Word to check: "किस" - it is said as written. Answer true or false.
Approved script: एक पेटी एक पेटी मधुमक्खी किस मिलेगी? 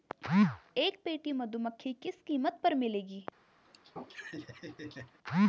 false